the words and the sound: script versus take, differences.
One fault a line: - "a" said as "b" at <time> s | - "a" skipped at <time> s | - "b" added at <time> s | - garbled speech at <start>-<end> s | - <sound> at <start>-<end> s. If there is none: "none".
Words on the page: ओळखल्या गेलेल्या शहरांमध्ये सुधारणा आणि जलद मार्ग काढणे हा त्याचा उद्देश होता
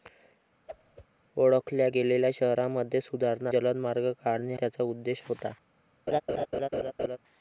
- whoosh at 0.7-1.1 s
- "आणि" skipped at 3.5 s
- "हा" skipped at 4.5 s
- laugh at 6.1-7.2 s